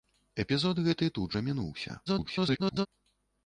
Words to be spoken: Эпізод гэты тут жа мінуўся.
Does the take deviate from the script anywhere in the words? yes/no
yes